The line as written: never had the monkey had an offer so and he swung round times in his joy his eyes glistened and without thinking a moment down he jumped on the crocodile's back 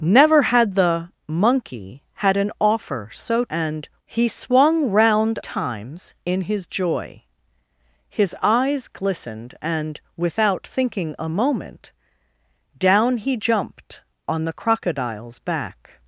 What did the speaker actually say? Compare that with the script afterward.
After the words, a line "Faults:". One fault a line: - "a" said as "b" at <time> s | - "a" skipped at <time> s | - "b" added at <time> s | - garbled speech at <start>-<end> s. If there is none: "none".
never had the monkey had an offer so and he swung round times in his joy his eyes glistened and without thinking a moment down he jumped on the crocodile's back
Faults:
none